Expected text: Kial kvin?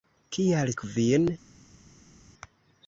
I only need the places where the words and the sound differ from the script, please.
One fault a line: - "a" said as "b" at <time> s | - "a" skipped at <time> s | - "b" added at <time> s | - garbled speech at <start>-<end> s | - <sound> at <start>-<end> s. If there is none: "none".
none